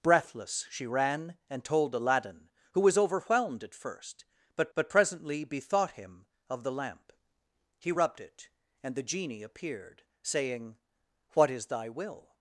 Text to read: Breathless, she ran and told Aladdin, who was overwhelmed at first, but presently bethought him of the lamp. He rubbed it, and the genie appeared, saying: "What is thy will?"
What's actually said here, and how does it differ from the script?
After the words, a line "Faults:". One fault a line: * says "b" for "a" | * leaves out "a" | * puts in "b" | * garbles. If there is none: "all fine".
Breathless, she ran and told Aladdin, who was overwhelmed at first, but but presently bethought him of the lamp. He rubbed it, and the genie appeared, saying: "What is thy will?"
Faults:
* puts in "but"